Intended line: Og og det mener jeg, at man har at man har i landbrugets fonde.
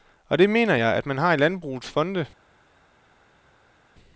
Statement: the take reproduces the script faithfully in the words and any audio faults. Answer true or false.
false